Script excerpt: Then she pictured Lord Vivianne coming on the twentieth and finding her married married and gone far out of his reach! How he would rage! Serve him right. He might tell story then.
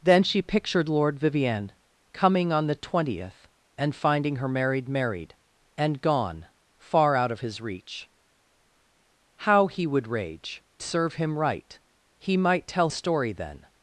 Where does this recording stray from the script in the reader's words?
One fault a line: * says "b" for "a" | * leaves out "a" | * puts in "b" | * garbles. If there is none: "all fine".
all fine